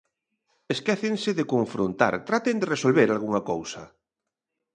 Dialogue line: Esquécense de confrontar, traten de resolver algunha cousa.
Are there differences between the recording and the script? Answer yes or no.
no